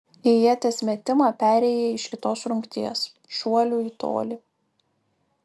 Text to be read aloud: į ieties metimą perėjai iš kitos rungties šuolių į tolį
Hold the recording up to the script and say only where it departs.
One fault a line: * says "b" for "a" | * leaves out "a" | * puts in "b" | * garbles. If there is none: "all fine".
all fine